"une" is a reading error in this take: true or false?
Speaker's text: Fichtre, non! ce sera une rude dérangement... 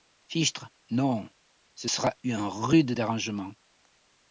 true